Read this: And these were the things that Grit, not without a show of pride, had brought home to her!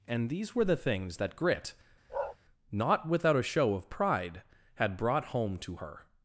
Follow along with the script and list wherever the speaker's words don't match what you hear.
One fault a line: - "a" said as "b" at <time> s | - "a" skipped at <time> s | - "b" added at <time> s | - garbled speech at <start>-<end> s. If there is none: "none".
none